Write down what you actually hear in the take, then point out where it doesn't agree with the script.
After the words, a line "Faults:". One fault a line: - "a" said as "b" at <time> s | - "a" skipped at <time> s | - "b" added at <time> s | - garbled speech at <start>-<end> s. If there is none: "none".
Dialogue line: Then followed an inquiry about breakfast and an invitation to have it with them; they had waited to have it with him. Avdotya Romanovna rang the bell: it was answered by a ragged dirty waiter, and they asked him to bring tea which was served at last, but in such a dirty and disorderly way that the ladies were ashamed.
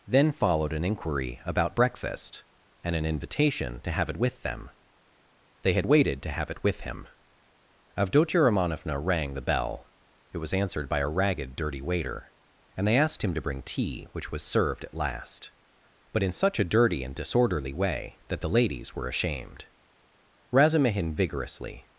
Then followed an inquiry about breakfast and an invitation to have it with them; they had waited to have it with him. Avdotya Romanovna rang the bell: it was answered by a ragged dirty waiter, and they asked him to bring tea which was served at last, but in such a dirty and disorderly way that the ladies were ashamed. Razumihin vigorously
Faults:
- "Razumihin vigorously" added at 20.5 s